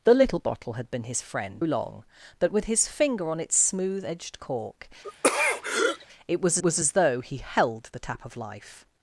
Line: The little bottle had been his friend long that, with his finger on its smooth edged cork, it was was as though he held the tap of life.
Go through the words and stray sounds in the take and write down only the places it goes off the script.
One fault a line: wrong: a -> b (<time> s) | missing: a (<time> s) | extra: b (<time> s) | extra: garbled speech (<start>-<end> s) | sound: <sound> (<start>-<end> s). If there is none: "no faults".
sound: throat clearing (5.0-6.1 s)